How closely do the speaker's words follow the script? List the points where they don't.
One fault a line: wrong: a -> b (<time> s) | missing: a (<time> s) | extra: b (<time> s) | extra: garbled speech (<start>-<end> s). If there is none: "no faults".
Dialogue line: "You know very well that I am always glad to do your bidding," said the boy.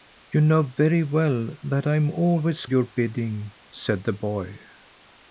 missing: glad to do (2.6 s)